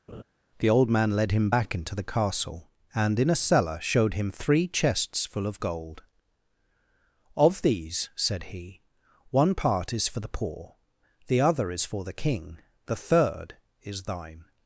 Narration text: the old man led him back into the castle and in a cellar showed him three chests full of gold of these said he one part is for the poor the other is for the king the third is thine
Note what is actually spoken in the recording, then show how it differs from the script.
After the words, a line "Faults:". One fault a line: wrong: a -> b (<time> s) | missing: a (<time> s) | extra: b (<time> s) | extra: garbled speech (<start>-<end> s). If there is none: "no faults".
the old man led him back into the castle and in a cellar showed him three chests full of gold of these said he one part is for the poor the other is for the king the third is thine
Faults:
no faults